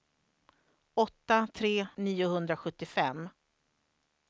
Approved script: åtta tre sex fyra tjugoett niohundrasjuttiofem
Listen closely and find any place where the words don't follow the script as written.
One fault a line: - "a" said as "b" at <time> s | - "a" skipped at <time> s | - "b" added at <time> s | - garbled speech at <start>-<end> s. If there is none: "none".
- "sex fyra tjugoett" skipped at 1.9 s